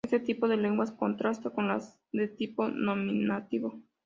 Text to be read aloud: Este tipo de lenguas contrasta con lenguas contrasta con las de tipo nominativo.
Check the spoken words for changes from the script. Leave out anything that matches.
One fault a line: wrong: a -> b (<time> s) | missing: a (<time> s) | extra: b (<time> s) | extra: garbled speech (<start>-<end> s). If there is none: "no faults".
missing: lenguas contrasta con (1.7 s)